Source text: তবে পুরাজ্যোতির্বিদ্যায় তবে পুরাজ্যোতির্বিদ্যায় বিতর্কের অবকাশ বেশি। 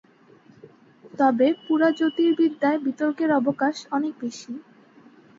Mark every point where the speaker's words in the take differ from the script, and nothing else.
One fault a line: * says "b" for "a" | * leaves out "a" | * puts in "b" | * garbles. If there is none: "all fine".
* leaves out "তবে পুরাজ্যোতির্বিদ্যায়"
* puts in "অনেক"